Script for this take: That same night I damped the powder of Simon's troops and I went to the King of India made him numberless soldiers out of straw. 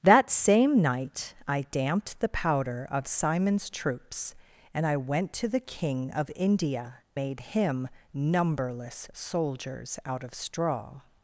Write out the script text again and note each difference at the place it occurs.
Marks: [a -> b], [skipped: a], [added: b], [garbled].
That same night I damped the powder of Simon's troops and I went to the King of India made him numberless soldiers out of straw.